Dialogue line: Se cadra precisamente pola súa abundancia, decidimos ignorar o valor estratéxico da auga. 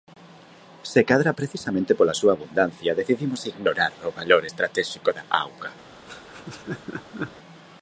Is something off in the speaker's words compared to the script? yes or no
no